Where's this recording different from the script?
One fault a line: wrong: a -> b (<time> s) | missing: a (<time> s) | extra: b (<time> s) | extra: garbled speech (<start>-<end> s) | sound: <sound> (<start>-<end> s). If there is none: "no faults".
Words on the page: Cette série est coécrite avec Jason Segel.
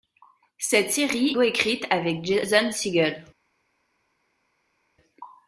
missing: est (1.4 s)